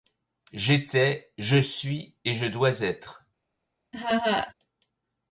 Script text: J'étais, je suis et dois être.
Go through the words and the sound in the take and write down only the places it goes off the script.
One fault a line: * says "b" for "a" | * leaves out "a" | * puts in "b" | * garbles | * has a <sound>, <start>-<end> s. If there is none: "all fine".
* puts in "je"
* has a laugh, 3.9-4.5 s